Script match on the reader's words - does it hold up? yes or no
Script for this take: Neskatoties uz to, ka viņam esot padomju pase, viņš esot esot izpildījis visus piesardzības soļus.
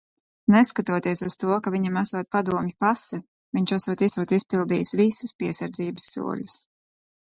yes